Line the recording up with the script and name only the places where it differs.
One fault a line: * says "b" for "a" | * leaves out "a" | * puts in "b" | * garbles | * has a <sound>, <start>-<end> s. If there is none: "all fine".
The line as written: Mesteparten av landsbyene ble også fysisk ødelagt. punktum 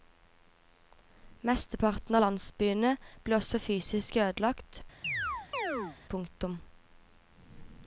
* has a chirp, 5.0-6.0 s